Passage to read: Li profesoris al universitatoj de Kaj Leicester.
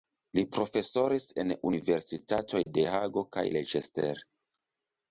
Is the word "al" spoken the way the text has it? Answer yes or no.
no